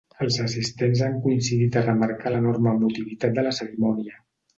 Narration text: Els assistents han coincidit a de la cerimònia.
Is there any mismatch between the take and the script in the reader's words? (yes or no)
yes